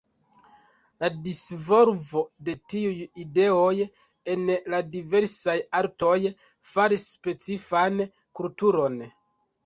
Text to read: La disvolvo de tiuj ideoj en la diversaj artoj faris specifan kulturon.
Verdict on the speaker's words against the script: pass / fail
pass